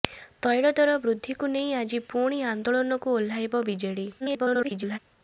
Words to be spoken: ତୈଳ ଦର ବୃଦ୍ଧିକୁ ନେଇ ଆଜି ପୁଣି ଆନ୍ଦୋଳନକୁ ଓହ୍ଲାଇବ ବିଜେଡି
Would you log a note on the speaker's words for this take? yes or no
yes